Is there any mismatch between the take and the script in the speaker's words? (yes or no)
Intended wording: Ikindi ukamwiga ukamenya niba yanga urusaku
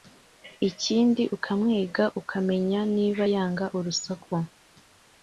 no